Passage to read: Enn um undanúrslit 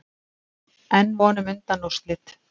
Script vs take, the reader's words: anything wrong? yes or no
yes